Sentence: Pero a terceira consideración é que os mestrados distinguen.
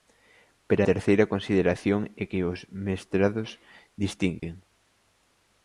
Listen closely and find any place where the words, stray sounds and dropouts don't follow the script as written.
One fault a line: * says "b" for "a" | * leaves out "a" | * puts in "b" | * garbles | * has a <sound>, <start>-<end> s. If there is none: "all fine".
* leaves out "a"
* has a dropout, 4.4-4.4 s